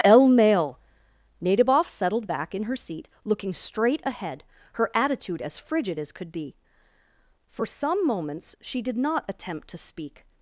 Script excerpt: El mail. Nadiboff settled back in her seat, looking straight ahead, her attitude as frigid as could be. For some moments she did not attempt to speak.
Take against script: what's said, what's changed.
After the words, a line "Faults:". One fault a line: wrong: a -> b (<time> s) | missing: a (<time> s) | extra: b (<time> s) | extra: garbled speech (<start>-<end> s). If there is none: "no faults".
El mail. Nadiboff settled back in her seat, looking straight ahead, her attitude as frigid as could be. For some moments she did not attempt to speak.
Faults:
no faults